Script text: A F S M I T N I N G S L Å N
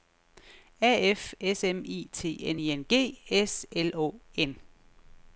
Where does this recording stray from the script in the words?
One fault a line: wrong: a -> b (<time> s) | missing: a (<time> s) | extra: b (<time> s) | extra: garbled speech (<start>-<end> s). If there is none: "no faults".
no faults